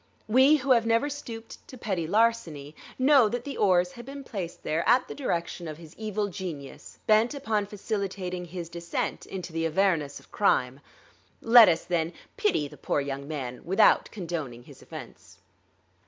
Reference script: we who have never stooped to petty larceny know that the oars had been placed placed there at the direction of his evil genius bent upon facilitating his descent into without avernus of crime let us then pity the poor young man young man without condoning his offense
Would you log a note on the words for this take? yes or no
yes